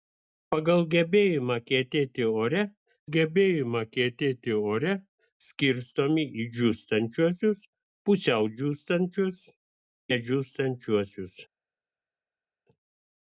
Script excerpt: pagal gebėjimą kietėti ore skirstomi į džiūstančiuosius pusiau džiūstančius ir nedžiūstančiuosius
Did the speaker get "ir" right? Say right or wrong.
wrong